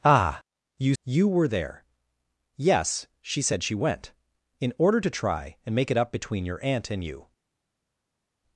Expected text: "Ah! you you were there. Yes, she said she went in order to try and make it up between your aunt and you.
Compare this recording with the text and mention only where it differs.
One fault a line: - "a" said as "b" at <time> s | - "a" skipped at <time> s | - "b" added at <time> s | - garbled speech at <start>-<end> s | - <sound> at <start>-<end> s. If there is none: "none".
none